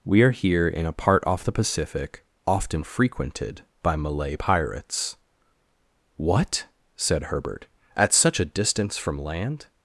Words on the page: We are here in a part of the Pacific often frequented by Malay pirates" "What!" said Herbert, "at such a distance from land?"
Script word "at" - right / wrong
right